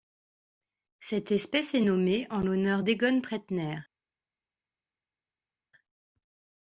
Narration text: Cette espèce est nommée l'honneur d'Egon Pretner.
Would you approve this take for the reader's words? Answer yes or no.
no